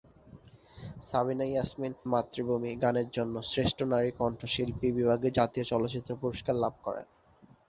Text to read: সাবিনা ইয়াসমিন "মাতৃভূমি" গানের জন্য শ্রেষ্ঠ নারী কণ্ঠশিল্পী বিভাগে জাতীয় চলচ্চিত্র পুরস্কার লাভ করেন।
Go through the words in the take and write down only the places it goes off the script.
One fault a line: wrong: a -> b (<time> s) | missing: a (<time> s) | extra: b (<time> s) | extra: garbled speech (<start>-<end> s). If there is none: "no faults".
no faults